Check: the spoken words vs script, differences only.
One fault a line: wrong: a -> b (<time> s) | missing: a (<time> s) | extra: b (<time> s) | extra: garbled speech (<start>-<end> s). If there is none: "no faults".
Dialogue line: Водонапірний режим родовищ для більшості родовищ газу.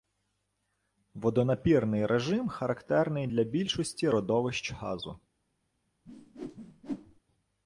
wrong: родовищ -> характерний (2.5 s)